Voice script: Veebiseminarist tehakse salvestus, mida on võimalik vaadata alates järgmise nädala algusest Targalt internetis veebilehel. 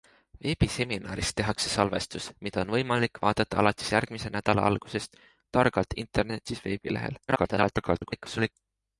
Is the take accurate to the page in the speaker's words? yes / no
no